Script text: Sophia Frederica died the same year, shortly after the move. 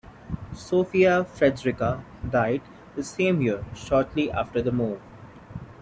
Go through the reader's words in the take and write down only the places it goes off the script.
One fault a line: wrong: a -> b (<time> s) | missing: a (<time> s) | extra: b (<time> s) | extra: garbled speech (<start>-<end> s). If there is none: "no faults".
no faults